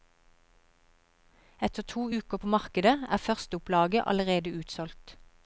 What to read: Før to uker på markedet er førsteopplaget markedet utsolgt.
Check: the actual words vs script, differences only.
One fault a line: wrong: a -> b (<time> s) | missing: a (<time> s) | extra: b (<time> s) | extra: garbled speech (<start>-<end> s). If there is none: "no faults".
wrong: Før -> Etter (1.7 s)
wrong: markedet -> allerede (4.1 s)